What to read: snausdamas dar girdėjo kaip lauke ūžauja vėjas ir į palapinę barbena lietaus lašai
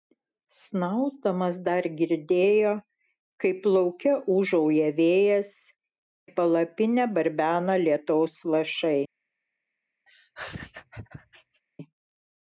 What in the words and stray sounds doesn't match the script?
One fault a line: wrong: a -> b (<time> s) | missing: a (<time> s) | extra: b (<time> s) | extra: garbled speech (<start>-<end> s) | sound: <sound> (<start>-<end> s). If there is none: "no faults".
missing: ir (5.5 s)
sound: laugh (10.1-11.6 s)